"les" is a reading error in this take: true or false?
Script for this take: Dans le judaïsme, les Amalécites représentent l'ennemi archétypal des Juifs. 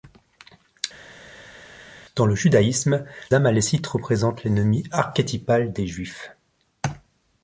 true